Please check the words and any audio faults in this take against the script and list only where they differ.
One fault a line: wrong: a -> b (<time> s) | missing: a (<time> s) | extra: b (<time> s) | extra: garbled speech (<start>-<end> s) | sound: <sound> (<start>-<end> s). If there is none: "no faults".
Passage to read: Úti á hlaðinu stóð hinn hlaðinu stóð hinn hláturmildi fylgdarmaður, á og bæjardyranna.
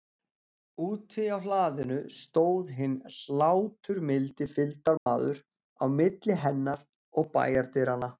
missing: hlaðinu stóð hinn (3.0 s)
sound: dropout (5.0-5.1 s)
extra: milli hennar (6.0 s)